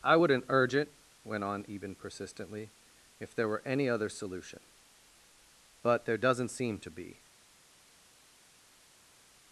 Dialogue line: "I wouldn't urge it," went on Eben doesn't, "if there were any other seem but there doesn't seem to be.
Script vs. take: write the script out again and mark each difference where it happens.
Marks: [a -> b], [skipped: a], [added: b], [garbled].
"I wouldn't urge it," went on Eben [doesn't, -> persistently] "if there were any other [seem -> solution] but there doesn't seem to be.